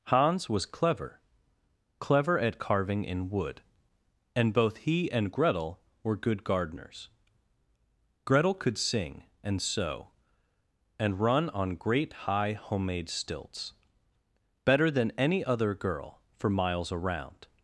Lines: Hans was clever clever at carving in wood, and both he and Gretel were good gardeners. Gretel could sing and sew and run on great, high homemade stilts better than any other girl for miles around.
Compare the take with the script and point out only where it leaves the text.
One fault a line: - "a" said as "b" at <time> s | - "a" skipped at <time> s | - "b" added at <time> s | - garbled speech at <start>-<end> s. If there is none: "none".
none